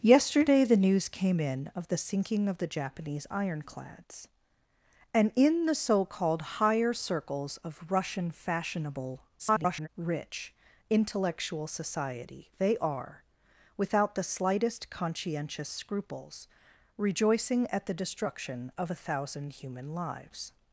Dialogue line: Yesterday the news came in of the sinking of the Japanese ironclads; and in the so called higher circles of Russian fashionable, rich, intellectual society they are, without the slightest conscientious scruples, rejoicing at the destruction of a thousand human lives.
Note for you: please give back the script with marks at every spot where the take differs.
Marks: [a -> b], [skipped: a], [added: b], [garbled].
Yesterday the news came in of the sinking of the Japanese ironclads; and in the so called higher circles of Russian fashionable, [garbled] rich, intellectual society they are, without the slightest conscientious scruples, rejoicing at the destruction of a thousand human lives.